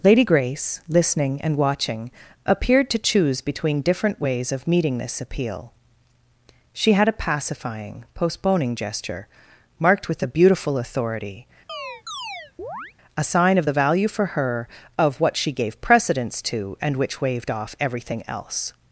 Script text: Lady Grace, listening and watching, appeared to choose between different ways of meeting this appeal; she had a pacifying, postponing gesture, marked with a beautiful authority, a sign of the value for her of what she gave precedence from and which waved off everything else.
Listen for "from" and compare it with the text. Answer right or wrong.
wrong